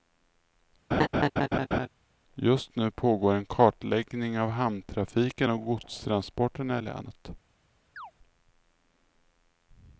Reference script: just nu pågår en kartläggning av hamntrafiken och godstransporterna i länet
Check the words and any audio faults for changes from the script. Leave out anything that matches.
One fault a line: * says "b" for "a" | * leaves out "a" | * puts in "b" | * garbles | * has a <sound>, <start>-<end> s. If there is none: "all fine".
* has a laugh, 0.9-1.9 s
* has a chirp, 8.0-8.1 s